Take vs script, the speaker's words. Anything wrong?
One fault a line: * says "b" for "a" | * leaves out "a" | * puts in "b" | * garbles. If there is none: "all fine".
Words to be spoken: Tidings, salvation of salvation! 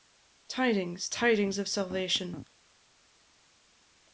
* says "tidings" for "salvation"